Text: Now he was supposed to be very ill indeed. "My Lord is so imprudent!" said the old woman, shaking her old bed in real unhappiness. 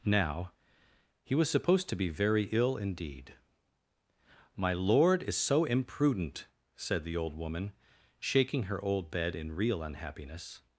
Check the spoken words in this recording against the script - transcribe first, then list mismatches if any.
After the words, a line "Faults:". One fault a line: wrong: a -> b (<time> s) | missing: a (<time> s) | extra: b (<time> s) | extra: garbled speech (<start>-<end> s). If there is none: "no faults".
Now he was supposed to be very ill indeed. "My Lord is so imprudent!" said the old woman, shaking her old bed in real unhappiness.
Faults:
no faults